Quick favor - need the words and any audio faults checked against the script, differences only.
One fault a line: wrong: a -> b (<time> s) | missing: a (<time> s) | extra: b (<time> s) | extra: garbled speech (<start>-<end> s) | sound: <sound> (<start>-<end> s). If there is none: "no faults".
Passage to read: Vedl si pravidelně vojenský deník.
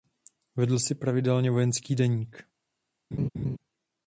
sound: laugh (3.1-3.6 s)